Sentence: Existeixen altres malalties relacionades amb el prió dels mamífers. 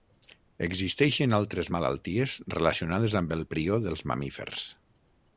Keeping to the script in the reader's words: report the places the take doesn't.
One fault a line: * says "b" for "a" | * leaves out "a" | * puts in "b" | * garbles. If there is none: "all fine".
all fine